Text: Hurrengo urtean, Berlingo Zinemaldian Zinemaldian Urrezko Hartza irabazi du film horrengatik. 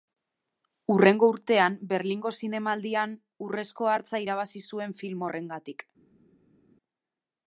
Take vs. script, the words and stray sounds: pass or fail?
fail